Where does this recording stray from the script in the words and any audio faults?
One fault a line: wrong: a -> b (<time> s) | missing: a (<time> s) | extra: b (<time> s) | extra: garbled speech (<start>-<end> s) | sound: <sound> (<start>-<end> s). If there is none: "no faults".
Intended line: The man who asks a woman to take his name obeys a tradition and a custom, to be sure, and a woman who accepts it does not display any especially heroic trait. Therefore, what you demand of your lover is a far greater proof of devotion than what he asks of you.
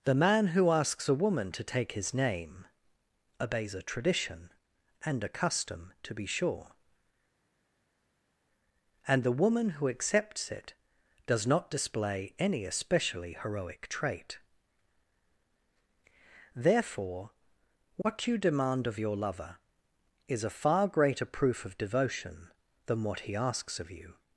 wrong: a -> the (9.2 s)